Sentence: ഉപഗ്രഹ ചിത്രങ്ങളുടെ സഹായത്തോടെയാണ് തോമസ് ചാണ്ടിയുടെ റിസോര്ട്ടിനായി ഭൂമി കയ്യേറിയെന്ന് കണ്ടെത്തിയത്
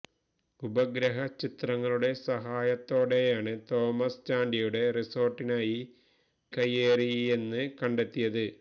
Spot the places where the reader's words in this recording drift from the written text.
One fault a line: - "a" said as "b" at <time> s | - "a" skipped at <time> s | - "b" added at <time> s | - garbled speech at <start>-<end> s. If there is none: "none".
- "ഭൂമി" skipped at 5.8 s